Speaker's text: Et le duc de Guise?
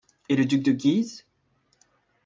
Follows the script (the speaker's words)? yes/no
yes